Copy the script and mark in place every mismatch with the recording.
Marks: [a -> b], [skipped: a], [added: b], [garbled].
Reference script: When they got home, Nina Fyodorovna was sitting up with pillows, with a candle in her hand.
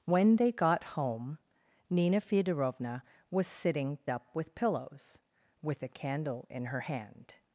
When they got home, Nina Fyodorovna was sitting up with pillows, with a candle in her hand.